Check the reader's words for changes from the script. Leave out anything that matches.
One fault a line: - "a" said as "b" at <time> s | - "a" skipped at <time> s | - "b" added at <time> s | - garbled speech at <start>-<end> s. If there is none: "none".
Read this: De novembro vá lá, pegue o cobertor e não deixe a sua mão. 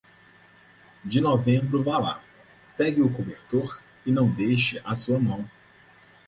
none